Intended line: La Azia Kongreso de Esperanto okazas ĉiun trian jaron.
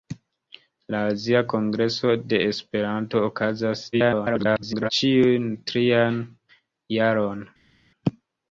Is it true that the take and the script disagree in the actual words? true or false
true